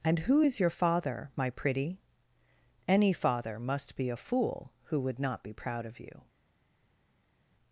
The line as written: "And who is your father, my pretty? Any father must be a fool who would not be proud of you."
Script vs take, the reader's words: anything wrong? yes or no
no